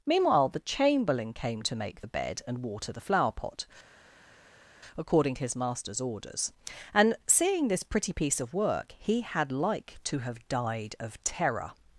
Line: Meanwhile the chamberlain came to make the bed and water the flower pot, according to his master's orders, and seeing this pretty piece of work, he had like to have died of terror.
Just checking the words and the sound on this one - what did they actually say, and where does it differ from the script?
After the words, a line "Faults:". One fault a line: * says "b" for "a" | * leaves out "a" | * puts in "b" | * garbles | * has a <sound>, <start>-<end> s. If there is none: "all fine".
Meanwhile the chamberlain came to make the bed and water the flower pot, according to his master's orders, and seeing this pretty piece of work, he had like to have died of terror.
Faults:
all fine